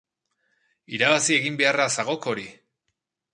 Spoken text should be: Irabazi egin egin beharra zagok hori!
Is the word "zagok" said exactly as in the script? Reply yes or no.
yes